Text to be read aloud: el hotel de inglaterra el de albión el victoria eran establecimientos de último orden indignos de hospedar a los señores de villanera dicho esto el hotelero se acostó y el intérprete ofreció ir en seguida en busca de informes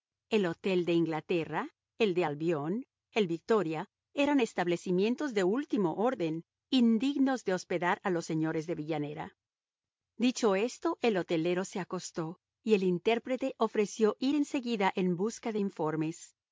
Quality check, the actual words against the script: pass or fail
pass